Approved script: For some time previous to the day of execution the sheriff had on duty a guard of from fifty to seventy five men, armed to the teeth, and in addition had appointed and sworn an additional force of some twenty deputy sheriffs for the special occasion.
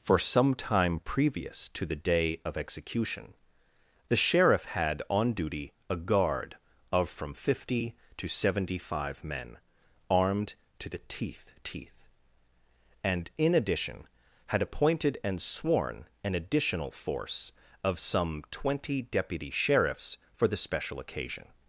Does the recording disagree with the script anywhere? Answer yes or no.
yes